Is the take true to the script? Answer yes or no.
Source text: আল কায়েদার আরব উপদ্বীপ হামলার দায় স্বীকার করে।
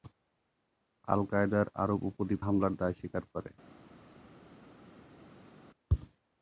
yes